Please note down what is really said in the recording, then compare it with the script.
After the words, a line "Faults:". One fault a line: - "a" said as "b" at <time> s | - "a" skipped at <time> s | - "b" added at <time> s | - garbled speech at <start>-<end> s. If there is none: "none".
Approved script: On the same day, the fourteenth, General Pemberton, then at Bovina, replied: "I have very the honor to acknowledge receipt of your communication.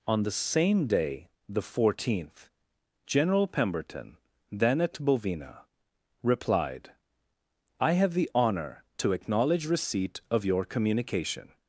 On the same day, the fourteenth, General Pemberton, then at Bovina, replied: "I have the honor to acknowledge receipt of your communication.
Faults:
- "very" skipped at 8.1 s